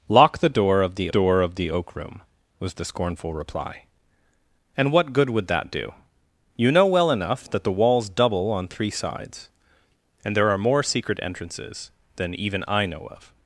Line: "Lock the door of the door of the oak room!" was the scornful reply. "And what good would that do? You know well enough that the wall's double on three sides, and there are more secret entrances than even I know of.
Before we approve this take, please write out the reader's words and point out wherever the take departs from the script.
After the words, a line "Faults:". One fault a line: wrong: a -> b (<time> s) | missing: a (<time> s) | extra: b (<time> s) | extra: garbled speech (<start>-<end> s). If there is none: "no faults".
"Lock the door of the door of the oak room!" was the scornful reply. "And what good would that do? You know well enough that the wall's double on three sides, and there are more secret entrances than even I know of.
Faults:
no faults